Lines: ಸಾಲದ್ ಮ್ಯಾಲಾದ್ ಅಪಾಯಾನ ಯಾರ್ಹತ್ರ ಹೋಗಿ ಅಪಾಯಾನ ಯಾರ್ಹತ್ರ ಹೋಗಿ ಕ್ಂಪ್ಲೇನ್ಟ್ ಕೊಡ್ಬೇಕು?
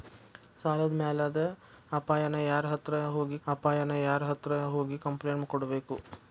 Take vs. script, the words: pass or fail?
pass